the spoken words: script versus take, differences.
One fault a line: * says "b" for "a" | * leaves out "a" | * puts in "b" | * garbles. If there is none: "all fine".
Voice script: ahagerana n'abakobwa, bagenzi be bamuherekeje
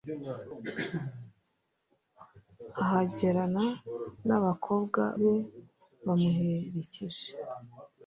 * leaves out "bagenzi"